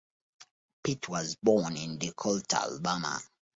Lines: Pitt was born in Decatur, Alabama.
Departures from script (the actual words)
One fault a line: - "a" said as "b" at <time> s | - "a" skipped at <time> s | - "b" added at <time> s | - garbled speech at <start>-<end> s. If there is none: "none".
none